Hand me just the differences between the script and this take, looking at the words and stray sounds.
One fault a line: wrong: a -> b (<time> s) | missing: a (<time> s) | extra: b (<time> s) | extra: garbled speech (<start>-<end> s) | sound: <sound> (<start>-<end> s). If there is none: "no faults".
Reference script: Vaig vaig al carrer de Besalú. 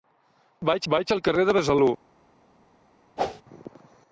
sound: whoosh (3.2-3.4 s)